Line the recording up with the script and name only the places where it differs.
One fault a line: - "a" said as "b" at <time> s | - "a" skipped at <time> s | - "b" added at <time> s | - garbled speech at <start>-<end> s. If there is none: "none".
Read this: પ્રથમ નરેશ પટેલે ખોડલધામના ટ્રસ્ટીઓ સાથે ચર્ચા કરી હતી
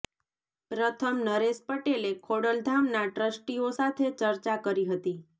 none